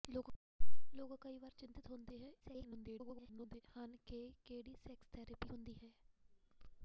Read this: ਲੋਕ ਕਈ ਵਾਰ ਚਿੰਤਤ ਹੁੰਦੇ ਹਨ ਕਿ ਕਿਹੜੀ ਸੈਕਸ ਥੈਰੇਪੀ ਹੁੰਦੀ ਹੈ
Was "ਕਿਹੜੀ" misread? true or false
false